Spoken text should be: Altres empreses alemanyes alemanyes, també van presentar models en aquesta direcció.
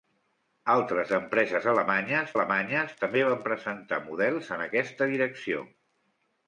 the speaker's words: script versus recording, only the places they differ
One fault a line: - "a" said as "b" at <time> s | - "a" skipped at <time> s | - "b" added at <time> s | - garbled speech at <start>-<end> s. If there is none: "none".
none